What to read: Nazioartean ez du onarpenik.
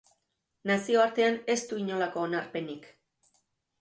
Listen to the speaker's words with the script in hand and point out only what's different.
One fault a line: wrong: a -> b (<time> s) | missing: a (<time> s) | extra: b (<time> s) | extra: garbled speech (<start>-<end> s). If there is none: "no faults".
extra: inolako (1.8 s)